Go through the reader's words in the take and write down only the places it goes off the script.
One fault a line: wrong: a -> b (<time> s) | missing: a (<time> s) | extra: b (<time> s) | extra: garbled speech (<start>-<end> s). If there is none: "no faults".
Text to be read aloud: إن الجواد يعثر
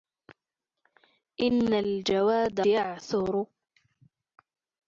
no faults